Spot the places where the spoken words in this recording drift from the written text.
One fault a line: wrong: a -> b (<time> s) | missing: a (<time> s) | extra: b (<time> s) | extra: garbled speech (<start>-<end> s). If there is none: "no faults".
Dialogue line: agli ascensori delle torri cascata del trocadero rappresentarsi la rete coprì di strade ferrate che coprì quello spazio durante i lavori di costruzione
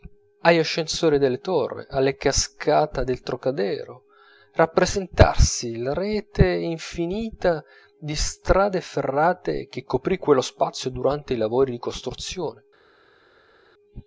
extra: alla (1.9 s)
wrong: coprì -> infinita (6.5 s)